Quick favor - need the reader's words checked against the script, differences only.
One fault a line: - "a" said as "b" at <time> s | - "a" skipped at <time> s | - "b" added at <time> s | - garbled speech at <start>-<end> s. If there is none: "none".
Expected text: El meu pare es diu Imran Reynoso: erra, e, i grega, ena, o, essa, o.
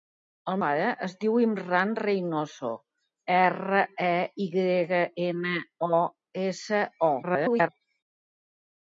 - "meu" skipped at 0.6 s
- garbled speech at 7.2-7.7 s